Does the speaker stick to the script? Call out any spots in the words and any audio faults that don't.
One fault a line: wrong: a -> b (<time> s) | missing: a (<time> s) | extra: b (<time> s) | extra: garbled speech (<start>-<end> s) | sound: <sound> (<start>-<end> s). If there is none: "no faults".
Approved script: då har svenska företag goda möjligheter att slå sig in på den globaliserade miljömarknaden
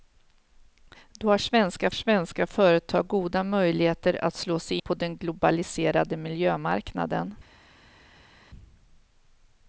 extra: svenska (1.9 s)
missing: in (4.8 s)